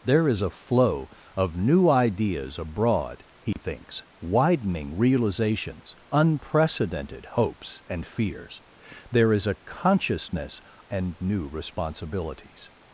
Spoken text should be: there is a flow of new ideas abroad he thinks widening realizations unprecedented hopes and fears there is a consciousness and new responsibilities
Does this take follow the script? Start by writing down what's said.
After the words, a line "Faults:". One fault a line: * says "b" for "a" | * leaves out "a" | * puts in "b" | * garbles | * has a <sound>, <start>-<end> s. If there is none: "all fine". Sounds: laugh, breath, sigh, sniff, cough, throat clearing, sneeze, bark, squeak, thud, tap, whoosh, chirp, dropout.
there is a flow of new ideas abroad he thinks widening realizations unprecedented hopes and fears there is a consciousness and new responsibilities
Faults:
* has a dropout, 3.5-3.6 s